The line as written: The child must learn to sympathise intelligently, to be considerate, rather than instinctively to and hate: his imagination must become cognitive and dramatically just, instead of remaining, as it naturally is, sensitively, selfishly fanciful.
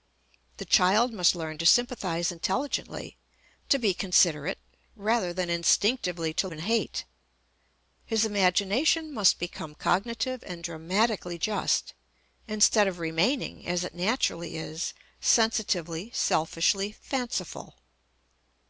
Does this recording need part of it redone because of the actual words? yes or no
no